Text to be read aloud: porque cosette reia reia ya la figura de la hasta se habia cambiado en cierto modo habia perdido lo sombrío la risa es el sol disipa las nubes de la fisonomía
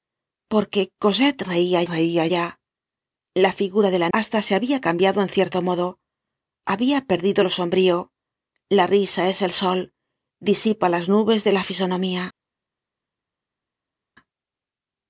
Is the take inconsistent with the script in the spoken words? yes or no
no